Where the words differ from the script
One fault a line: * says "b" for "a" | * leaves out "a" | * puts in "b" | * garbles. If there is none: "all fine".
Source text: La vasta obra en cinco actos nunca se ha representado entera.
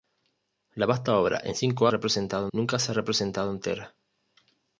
* says "representado" for "actos"